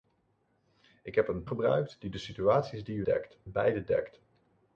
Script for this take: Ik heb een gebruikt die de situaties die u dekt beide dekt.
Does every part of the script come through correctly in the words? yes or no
yes